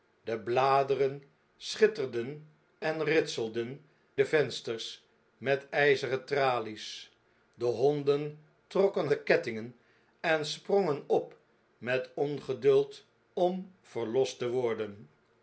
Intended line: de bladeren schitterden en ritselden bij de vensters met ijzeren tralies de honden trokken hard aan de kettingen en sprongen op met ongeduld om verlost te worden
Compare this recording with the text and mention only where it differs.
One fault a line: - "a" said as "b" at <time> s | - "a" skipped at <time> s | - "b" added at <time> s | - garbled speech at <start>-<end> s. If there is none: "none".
- "bij" skipped at 3.9 s
- "hard aan" skipped at 9.1 s